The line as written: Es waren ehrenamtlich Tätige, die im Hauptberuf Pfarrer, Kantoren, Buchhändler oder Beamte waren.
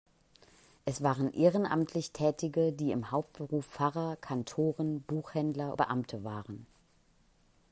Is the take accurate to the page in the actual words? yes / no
no